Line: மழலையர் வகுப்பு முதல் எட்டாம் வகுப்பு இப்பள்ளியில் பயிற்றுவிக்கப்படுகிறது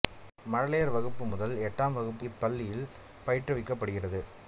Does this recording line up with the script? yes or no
yes